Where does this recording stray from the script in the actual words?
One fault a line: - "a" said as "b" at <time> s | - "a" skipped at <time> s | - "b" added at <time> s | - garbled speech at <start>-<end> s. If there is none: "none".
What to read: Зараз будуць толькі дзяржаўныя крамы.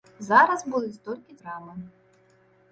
- "дзяржаўныя" skipped at 1.4 s